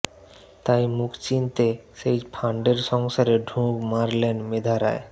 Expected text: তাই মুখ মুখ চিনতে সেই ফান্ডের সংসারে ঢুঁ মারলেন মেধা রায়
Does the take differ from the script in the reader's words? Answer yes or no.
yes